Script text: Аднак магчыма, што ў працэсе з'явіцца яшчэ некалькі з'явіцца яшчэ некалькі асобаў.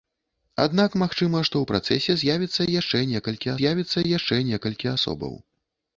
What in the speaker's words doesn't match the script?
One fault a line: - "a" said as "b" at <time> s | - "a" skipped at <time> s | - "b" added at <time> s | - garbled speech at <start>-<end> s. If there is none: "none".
none